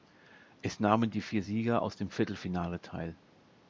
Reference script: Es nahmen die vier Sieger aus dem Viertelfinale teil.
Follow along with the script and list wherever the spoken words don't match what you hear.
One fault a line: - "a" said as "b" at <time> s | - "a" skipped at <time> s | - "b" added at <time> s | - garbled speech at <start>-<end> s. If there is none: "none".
none